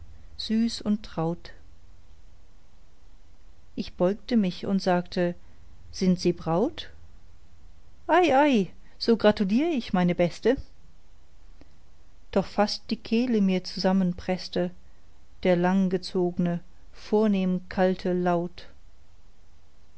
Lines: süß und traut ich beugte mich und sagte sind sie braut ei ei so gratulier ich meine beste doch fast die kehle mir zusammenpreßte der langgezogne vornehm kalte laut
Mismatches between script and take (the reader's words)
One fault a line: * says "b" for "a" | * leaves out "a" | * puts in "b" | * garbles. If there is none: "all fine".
all fine